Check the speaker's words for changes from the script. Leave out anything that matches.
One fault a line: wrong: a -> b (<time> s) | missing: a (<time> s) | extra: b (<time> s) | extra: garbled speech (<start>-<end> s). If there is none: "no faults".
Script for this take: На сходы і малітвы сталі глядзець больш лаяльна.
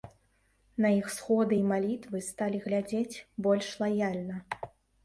extra: іх (1.0 s)